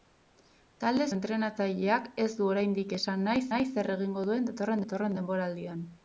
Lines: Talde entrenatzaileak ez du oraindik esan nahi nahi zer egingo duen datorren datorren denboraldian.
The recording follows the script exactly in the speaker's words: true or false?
true